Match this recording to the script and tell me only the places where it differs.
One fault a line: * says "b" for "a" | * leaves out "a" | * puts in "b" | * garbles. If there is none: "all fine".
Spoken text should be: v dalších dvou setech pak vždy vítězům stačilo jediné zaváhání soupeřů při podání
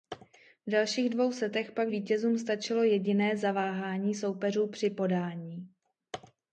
* leaves out "vždy"